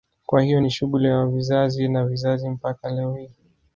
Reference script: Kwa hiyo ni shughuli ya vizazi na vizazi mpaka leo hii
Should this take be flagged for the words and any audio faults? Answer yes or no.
no